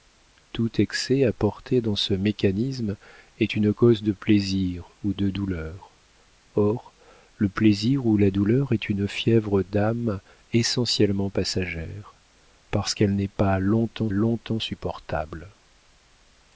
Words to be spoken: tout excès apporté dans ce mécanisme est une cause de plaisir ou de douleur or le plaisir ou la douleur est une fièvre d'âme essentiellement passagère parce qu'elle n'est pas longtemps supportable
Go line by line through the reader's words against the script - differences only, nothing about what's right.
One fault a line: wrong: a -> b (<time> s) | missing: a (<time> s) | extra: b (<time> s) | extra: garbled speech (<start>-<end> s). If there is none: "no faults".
extra: longtemps (14.1 s)